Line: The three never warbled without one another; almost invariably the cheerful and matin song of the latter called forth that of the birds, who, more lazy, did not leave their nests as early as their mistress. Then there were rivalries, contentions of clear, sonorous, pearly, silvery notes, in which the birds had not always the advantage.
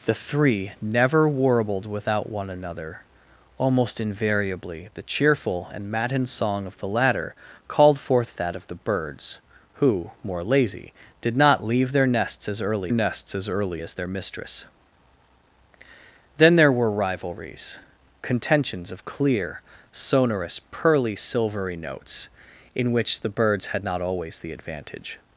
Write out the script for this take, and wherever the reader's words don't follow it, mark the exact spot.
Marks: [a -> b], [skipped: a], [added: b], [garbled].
The three never warbled without one another; almost invariably the cheerful and matin song of the latter called forth that of the birds, who, more lazy, did not leave their nests as early [added: nests as early] as their mistress. Then there were rivalries, contentions of clear, sonorous, pearly, silvery notes, in which the birds had not always the advantage.